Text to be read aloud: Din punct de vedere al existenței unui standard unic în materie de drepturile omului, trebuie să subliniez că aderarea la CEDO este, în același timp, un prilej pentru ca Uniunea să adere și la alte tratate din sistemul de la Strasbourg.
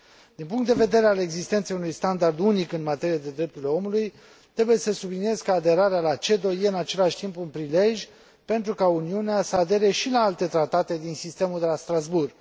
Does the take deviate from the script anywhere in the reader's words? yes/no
no